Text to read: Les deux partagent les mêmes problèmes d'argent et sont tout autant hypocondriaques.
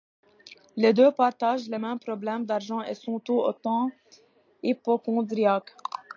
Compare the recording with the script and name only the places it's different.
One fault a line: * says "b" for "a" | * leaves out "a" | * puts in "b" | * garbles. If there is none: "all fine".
all fine